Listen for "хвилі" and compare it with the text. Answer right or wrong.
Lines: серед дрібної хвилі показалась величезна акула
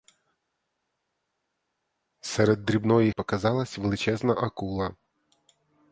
wrong